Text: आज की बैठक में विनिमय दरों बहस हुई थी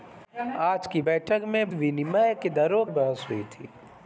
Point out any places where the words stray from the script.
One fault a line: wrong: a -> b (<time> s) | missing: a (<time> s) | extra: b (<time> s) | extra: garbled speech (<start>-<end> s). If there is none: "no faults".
no faults